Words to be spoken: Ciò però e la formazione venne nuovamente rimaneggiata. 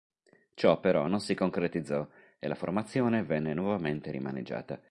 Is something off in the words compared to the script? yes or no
yes